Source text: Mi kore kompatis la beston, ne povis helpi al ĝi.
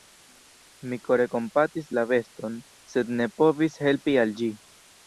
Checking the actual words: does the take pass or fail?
fail